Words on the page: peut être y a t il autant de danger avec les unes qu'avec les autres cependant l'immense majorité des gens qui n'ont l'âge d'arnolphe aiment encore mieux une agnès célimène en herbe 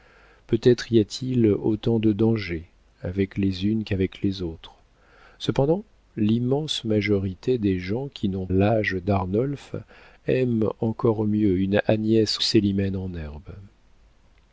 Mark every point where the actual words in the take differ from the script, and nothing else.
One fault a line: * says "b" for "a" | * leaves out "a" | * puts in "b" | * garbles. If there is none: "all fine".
all fine